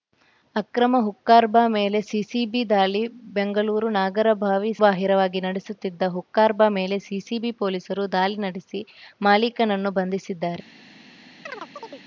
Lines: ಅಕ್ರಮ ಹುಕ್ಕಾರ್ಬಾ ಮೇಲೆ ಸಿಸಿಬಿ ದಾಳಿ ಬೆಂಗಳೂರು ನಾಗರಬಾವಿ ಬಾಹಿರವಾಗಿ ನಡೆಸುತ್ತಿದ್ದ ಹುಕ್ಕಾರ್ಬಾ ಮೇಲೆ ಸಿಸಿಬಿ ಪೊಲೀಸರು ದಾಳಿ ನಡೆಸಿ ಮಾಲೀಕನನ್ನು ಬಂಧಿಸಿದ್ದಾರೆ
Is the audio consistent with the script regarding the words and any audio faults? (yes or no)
no